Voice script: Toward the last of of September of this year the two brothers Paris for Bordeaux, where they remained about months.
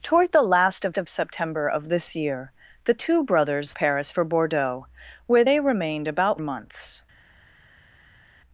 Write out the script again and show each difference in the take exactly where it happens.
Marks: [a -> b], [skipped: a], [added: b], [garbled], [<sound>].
Toward the last of of September of this year the two brothers Paris for Bordeaux, where they remained about months.